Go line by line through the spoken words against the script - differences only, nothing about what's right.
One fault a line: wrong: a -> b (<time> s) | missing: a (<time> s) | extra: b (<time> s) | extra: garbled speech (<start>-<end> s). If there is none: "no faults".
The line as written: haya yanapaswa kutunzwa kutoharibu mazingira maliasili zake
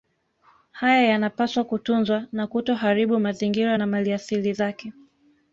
extra: na (2.3 s)
extra: na (3.8 s)